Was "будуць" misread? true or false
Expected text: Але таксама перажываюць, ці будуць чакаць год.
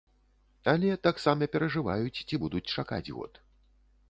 false